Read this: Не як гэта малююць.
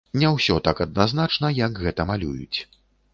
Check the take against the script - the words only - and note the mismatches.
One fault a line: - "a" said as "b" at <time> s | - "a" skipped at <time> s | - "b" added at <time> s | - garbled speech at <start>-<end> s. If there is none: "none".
- "ўсё так адназначна" added at 0.3 s